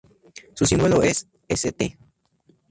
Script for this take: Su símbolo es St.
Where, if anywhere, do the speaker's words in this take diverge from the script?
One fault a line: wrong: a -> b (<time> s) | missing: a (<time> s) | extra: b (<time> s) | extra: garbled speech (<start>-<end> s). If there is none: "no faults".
no faults